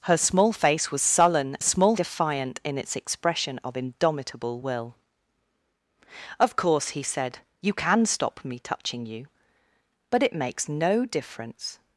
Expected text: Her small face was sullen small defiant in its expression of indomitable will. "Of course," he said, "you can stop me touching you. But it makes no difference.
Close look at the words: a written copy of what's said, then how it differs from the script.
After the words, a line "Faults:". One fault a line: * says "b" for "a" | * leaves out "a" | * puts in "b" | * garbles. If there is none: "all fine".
Her small face was sullen small defiant in its expression of indomitable will. "Of course," he said, "you can stop me touching you. But it makes no difference.
Faults:
all fine